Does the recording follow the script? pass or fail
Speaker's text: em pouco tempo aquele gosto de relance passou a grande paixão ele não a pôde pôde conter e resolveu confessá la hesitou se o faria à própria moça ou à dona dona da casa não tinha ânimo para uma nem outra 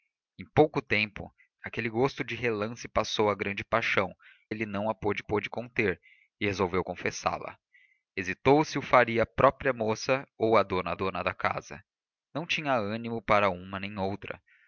pass